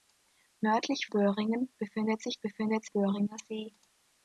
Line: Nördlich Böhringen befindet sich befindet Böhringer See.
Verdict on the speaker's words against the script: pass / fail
pass